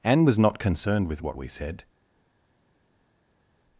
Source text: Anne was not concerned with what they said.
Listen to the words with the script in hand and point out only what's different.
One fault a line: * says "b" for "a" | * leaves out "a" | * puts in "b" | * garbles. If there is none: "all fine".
* says "we" for "they"